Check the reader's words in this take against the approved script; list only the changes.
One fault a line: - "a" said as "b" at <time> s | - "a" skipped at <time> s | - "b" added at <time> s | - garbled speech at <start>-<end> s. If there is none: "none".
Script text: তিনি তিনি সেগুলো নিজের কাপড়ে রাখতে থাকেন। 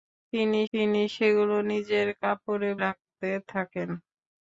none